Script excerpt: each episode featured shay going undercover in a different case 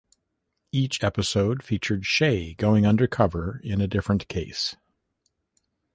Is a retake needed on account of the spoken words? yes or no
no